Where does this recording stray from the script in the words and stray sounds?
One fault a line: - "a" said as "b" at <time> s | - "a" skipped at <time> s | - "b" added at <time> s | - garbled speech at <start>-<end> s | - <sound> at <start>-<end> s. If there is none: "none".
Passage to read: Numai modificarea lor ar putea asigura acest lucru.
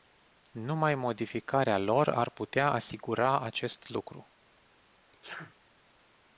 - sneeze at 5.1-5.6 s